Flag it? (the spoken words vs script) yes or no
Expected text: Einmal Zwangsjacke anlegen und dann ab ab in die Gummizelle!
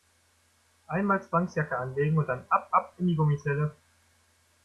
no